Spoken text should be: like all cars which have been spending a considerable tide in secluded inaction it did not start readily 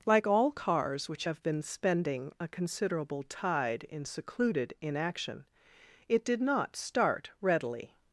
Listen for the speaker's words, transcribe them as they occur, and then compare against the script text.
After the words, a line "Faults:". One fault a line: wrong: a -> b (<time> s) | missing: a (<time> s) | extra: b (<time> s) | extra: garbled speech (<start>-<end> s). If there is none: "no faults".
like all cars which have been spending a considerable tide in secluded inaction it did not start readily
Faults:
no faults